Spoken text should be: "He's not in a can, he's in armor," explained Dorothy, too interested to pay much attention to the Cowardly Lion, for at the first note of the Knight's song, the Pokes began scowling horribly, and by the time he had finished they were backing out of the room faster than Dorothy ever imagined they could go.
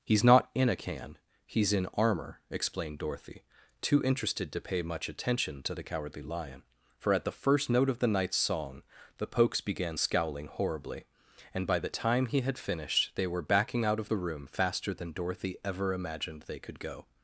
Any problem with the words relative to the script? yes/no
no